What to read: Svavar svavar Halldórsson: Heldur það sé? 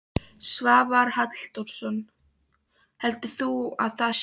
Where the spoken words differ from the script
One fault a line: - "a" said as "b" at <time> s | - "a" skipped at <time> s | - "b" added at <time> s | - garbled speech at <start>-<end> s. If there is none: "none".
- "svavar" skipped at 1.1 s
- "þú að" added at 3.4 s